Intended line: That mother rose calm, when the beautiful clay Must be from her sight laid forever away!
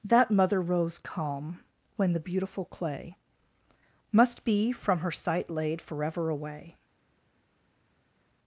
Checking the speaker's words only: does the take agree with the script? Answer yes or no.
yes